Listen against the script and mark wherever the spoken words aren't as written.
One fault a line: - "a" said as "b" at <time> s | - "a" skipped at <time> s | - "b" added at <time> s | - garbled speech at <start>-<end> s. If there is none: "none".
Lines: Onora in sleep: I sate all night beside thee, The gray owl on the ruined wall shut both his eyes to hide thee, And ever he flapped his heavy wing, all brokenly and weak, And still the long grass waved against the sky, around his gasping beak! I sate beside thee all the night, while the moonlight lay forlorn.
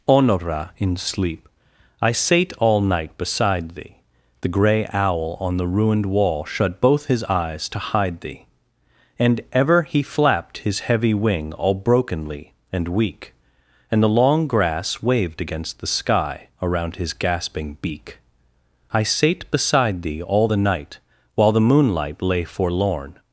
- "still" skipped at 14.0 s